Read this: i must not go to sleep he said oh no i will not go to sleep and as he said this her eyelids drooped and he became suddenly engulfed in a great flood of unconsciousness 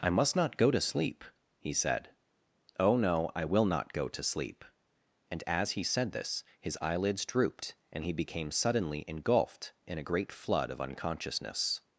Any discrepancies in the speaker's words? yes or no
yes